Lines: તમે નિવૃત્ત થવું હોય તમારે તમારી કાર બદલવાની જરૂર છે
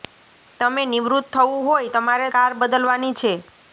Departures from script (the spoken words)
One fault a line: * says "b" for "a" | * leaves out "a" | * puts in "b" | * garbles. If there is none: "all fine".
* leaves out "તમારી"
* leaves out "જરૂર"